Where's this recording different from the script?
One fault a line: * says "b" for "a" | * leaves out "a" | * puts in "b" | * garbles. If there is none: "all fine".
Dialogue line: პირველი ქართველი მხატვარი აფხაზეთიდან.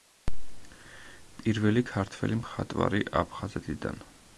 all fine